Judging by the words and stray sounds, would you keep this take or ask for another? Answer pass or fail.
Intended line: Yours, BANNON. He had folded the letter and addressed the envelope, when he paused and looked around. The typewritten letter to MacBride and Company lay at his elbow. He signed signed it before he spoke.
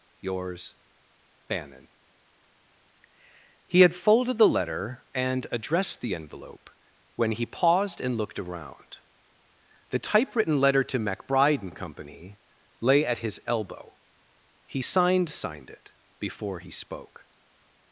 pass